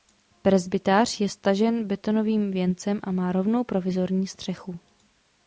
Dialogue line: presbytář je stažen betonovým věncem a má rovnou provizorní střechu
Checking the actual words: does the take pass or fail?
pass